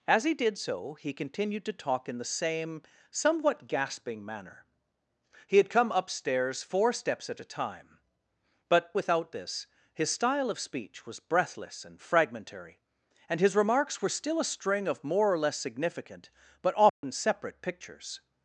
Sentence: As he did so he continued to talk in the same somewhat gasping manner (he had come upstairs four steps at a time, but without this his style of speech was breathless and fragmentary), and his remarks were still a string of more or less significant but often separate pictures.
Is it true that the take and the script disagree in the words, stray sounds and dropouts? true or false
true